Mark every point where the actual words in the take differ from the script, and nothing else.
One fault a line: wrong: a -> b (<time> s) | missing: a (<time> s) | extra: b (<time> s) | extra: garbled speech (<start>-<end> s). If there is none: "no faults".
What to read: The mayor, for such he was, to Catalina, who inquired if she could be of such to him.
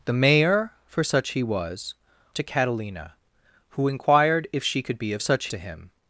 no faults